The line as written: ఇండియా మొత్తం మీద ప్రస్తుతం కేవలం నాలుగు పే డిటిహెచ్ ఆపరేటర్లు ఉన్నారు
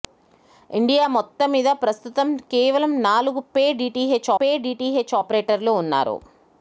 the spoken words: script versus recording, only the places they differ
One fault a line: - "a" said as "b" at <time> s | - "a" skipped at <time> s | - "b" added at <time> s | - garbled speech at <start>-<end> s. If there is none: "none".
- "పే డిటిహెచ్" added at 4.4 s